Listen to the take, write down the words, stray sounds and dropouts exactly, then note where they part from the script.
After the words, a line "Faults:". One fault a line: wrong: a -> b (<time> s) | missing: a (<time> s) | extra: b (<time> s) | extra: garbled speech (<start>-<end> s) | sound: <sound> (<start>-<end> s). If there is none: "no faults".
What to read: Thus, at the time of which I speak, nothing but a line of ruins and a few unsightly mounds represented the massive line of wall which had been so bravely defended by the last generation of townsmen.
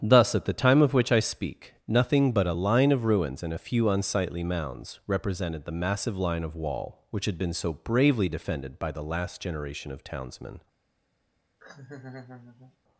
Thus, at the time of which I speak, nothing but a line of ruins and a few unsightly mounds represented the massive line of wall which had been so bravely defended by the last generation of townsmen.
Faults:
sound: laugh (11.6-12.8 s)